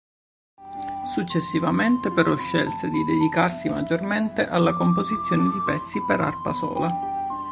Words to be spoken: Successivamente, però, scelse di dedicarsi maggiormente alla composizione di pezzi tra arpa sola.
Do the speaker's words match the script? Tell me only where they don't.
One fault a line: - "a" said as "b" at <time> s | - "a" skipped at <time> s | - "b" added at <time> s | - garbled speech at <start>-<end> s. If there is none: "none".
- "tra" said as "per" at 6.1 s